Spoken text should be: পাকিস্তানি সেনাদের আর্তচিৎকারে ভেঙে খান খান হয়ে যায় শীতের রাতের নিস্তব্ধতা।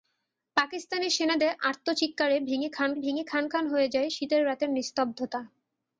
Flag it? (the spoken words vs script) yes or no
yes